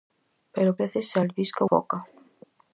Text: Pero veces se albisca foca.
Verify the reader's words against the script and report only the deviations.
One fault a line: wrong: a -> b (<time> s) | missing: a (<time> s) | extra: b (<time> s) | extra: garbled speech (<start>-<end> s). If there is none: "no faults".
no faults